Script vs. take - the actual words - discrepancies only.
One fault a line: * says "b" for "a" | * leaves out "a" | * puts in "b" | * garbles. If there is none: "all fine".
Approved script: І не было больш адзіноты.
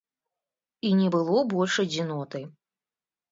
all fine